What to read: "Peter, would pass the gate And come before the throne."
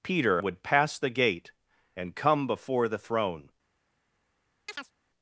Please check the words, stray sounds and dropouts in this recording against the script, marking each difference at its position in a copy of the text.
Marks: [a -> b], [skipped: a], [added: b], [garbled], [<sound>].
"Peter, would pass the gate And come before the throne." [chirp]